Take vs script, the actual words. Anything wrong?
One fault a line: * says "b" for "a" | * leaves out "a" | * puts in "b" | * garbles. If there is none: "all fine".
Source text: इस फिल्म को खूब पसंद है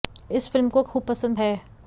all fine